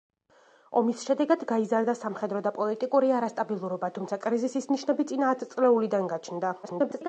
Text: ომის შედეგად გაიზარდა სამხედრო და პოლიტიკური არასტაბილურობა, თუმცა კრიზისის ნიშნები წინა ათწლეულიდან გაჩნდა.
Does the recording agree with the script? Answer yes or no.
no